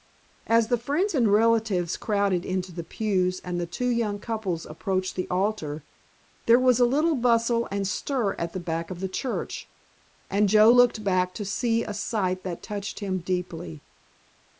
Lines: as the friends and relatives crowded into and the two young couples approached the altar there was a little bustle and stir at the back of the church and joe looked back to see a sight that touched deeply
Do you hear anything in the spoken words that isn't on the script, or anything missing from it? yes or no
yes